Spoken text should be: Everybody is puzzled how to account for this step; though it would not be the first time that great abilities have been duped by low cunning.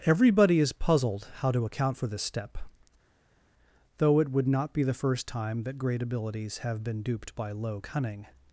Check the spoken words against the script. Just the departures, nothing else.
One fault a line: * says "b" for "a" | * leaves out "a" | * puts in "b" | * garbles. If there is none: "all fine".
all fine